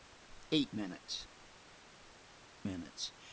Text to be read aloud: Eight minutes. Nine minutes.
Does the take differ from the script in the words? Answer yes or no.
yes